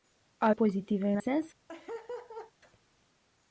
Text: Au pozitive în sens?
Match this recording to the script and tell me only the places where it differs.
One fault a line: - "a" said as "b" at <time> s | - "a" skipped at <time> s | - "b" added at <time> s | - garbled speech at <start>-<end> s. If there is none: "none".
none